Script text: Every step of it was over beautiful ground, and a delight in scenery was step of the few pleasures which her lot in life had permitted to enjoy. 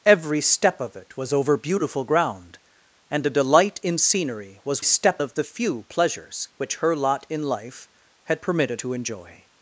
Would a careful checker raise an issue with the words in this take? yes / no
no